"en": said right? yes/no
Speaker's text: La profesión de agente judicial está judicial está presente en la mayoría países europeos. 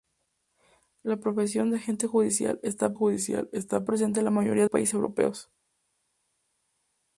yes